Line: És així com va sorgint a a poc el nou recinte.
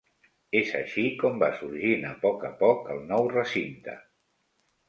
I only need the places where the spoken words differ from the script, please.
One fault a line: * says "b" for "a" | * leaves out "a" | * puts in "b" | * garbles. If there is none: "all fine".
* puts in "poc"